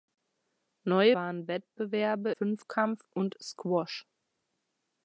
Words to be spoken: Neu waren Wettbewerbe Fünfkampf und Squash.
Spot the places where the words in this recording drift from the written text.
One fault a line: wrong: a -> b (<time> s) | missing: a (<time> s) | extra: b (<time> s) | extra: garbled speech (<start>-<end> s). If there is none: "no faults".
no faults